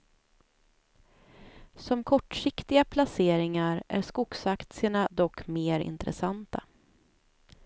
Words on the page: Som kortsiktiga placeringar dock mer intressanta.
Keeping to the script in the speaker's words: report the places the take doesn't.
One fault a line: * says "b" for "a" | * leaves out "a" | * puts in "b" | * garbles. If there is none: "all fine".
* puts in "är skogsaktierna"